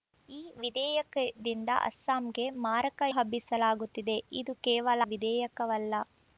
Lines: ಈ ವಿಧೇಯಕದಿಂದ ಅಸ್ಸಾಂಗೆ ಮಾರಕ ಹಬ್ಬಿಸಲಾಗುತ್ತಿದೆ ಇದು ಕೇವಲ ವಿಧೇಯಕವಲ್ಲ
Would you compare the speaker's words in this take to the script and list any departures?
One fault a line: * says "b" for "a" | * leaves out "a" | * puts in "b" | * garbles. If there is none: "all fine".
all fine